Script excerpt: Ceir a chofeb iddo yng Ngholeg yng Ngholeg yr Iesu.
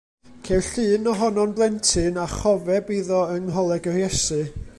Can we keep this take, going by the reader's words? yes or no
no